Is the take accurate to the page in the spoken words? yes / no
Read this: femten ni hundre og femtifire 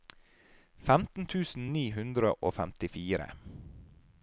no